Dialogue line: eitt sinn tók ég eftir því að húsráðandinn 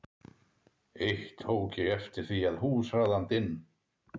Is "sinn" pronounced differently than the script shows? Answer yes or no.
yes